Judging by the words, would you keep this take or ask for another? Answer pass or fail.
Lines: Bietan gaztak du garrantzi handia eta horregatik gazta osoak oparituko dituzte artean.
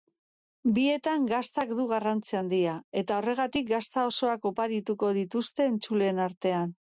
fail